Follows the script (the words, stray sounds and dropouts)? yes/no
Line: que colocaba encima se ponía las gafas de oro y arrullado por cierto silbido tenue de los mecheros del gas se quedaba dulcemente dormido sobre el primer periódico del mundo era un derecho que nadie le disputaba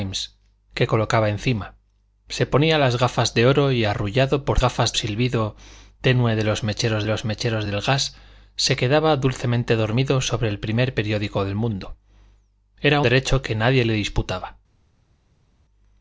no